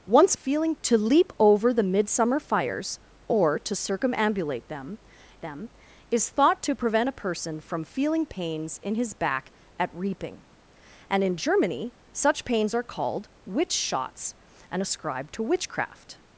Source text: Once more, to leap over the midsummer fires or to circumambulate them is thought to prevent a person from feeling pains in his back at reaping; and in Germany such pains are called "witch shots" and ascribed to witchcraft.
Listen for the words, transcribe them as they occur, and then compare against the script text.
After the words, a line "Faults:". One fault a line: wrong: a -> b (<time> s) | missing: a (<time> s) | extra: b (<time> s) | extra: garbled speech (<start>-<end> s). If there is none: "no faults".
Once feeling, to leap over the midsummer fires or to circumambulate them them is thought to prevent a person from feeling pains in his back at reaping; and in Germany such pains are called "witch shots" and ascribed to witchcraft.
Faults:
wrong: more -> feeling (0.3 s)
extra: them (5.4 s)